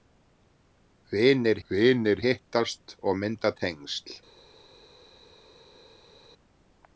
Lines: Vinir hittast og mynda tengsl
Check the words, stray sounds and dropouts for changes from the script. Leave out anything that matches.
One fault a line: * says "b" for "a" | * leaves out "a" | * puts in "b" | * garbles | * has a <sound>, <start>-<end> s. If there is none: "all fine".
* puts in "vinir"